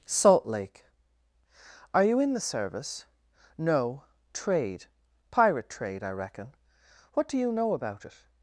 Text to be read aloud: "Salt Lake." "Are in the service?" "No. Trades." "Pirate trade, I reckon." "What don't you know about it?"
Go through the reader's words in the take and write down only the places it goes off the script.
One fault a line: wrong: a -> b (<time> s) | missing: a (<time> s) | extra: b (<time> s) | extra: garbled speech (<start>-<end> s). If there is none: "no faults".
extra: you (2.0 s)
wrong: Trades -> Trade (4.3 s)
wrong: don't -> do (7.3 s)